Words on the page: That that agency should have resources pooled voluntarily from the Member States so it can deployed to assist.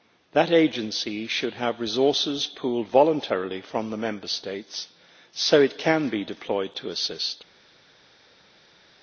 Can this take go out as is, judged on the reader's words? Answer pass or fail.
fail